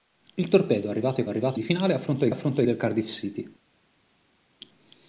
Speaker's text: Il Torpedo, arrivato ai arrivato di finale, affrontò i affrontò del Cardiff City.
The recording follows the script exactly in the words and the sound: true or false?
true